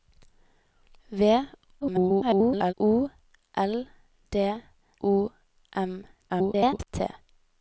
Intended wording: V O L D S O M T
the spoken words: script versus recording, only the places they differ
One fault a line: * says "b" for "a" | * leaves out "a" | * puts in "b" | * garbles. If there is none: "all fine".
* garbles
* leaves out "S"
* garbles